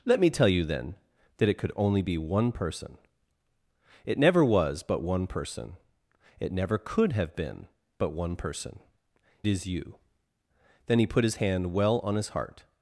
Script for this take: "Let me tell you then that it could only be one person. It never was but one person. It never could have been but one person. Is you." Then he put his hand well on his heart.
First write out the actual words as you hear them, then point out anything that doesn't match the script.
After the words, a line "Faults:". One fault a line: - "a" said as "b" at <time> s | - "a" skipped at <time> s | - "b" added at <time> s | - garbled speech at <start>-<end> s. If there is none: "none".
"Let me tell you then that it could only be one person. It never was but one person. It never could have been but one person. Is you." Then he put his hand well on his heart.
Faults:
none